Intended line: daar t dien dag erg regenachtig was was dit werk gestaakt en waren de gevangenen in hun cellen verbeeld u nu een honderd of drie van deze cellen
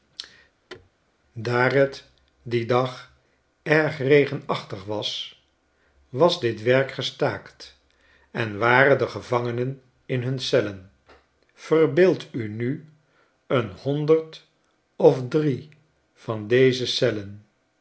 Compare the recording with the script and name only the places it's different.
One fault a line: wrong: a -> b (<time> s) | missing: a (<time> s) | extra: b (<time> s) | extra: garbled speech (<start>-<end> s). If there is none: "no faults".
no faults